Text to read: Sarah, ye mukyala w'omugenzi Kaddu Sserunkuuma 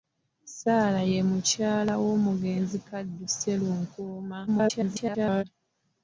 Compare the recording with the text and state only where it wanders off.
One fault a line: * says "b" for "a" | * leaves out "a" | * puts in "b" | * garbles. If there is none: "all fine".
* garbles